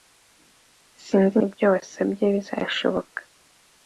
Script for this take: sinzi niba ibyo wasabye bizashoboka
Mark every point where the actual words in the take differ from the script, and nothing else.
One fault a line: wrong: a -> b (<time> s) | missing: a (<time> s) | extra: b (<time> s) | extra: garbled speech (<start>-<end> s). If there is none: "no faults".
missing: niba (1.4 s)